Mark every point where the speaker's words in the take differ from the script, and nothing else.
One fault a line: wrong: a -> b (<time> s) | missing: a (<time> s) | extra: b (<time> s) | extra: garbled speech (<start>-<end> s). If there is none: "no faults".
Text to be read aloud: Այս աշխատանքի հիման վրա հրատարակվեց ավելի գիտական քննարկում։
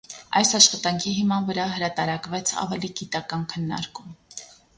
no faults